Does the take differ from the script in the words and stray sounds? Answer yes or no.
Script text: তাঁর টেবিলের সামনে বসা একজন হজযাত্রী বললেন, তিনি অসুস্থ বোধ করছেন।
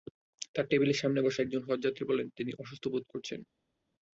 no